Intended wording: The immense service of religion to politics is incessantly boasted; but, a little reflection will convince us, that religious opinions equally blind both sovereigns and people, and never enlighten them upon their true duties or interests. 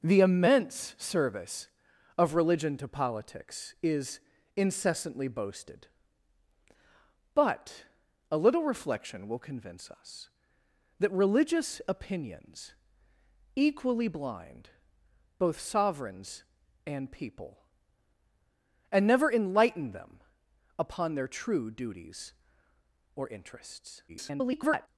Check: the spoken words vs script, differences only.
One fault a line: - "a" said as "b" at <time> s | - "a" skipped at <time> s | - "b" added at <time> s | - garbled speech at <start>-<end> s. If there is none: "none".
- garbled speech at 24.1-24.9 s